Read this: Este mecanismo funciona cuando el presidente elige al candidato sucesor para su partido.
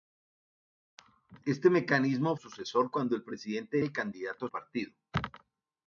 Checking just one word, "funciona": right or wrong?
wrong